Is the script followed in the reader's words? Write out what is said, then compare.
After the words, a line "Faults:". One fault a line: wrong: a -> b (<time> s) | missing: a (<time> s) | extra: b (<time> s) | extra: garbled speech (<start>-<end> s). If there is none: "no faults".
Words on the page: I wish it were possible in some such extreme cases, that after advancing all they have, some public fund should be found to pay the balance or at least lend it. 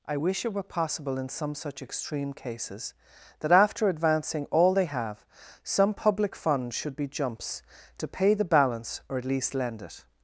I wish it were possible in some such extreme cases, that after advancing all they have, some public fund should be jumps to pay the balance or at least lend it.
Faults:
wrong: found -> jumps (7.1 s)